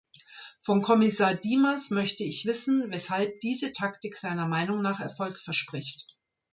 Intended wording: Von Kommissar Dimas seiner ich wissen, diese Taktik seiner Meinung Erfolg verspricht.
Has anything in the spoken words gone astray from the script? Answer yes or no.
yes